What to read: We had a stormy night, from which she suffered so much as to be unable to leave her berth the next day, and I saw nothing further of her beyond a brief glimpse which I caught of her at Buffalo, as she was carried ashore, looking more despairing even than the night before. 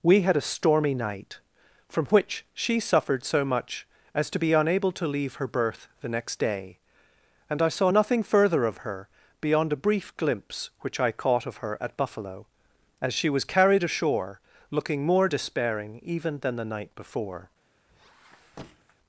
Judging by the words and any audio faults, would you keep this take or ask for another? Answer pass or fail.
fail